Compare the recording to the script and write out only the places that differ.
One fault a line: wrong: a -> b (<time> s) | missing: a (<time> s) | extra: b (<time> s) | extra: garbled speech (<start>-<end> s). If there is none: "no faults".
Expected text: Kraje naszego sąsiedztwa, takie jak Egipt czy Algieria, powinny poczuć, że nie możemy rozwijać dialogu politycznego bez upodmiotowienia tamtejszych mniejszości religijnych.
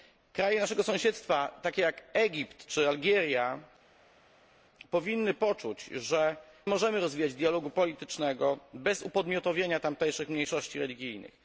missing: nie (6.4 s)